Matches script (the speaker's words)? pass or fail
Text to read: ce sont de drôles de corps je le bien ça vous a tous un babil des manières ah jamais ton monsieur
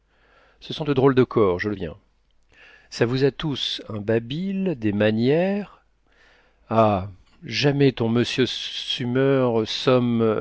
pass